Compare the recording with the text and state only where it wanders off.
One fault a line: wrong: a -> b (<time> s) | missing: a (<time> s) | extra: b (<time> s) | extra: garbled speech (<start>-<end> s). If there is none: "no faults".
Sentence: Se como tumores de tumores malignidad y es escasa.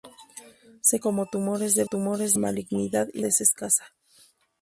no faults